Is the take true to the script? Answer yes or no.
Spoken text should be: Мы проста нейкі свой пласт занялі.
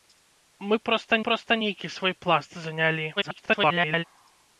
no